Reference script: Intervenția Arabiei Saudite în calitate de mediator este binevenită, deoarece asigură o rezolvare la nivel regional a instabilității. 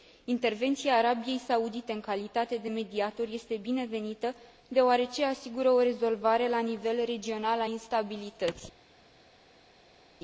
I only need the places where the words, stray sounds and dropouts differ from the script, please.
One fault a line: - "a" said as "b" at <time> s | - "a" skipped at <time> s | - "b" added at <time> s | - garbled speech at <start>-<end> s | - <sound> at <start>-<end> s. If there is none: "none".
none